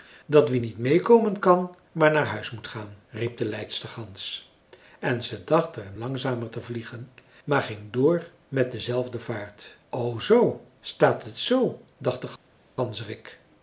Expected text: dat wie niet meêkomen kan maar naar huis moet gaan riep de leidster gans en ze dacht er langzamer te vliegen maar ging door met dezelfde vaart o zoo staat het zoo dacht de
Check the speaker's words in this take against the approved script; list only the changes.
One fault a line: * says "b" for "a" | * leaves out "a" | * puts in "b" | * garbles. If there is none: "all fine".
all fine